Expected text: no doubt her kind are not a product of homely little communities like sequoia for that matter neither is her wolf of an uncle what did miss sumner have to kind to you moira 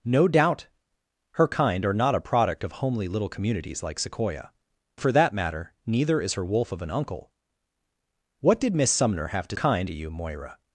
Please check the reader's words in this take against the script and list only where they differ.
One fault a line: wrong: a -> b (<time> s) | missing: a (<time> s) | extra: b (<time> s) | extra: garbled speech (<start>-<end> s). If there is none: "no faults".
no faults